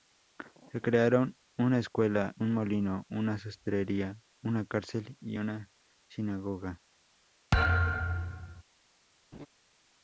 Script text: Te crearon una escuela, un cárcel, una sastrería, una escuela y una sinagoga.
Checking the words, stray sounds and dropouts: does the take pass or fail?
fail